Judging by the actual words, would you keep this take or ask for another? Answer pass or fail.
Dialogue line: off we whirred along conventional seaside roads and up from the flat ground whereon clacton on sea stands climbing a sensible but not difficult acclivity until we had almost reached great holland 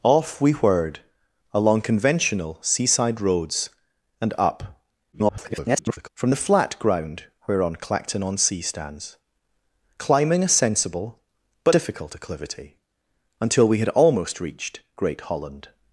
fail